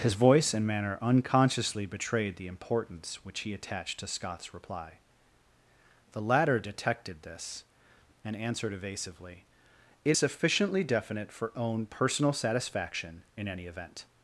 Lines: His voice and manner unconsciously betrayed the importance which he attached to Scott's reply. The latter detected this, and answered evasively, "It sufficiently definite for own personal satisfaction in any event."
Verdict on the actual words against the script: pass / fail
pass